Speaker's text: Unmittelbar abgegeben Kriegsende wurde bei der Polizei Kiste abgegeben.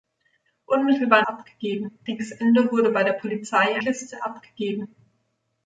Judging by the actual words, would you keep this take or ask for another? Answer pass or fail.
pass